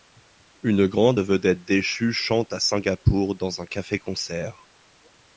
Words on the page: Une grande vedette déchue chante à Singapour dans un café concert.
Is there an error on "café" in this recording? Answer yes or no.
no